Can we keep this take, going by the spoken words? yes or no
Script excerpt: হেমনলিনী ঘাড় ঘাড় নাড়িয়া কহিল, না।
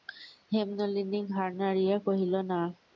no